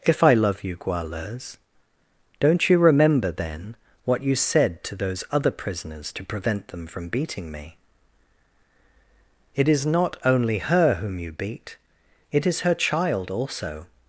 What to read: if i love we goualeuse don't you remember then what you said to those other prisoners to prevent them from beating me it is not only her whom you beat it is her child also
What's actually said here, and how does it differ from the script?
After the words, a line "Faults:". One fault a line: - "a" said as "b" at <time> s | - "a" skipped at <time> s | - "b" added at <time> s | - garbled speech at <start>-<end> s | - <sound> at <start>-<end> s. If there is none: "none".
if i love you goualeuse don't you remember then what you said to those other prisoners to prevent them from beating me it is not only her whom you beat it is her child also
Faults:
- "we" said as "you" at 0.6 s